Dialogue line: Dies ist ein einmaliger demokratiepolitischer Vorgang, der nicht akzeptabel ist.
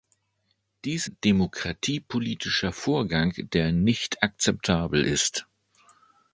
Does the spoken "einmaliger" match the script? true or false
false